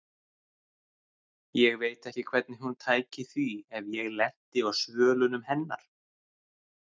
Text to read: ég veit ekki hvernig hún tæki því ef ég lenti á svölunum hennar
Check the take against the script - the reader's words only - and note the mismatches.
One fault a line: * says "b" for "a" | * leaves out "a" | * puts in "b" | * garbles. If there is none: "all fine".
all fine